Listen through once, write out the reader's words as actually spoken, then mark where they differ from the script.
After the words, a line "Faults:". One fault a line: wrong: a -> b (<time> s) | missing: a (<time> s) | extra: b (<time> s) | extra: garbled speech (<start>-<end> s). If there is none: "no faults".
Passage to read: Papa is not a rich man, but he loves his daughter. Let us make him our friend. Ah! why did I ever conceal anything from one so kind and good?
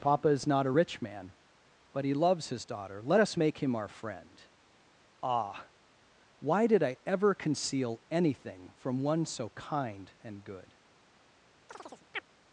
Papa is not a rich man, but he loves his daughter. Let us make him our friend. Ah! why did I ever conceal anything from one so kind and good?
Faults:
no faults